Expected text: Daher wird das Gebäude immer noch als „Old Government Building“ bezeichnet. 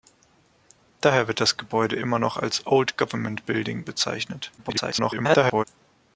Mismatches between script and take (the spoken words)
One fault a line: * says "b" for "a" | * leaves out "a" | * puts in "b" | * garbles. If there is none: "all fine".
* garbles